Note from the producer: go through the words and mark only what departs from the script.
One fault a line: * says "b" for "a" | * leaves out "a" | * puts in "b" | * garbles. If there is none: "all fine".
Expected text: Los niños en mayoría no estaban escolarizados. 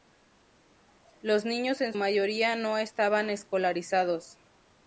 all fine